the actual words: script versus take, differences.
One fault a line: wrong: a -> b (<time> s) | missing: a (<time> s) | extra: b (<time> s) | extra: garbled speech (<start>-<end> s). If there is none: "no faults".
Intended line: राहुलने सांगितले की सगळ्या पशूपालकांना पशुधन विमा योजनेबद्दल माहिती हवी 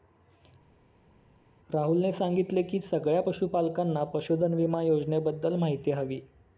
no faults